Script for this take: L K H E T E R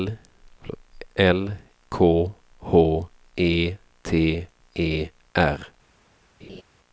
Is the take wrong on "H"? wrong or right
right